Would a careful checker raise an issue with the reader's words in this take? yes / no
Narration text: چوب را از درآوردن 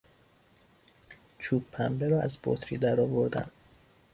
yes